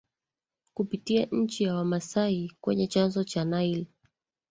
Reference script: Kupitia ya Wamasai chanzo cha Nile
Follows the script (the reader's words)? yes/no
no